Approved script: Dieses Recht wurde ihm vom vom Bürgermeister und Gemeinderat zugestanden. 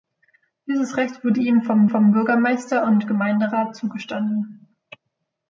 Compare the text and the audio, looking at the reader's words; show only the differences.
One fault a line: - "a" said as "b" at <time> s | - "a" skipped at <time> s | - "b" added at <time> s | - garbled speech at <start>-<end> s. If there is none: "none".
none